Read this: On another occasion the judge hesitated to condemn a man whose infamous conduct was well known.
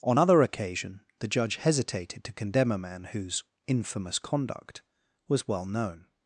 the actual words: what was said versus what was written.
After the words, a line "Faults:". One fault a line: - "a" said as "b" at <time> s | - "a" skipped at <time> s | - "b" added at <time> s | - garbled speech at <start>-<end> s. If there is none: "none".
On other occasion the judge hesitated to condemn a man whose infamous conduct was well known.
Faults:
- "another" said as "other" at 0.2 s